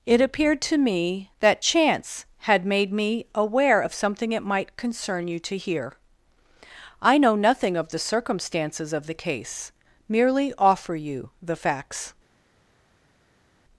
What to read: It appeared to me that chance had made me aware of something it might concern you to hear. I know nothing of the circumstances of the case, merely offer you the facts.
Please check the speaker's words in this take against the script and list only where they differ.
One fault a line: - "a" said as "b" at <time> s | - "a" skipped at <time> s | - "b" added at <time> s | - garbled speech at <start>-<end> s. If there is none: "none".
none